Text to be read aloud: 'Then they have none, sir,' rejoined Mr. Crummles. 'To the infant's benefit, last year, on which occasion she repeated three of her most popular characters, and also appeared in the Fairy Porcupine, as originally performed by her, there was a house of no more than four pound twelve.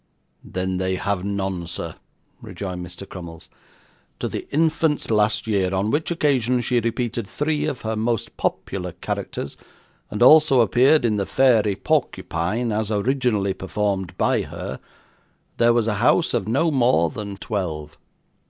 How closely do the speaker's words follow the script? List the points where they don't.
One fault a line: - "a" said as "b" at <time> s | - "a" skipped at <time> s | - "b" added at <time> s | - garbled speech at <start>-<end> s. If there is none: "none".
- "benefit" skipped at 5.0 s
- "four pound" skipped at 17.4 s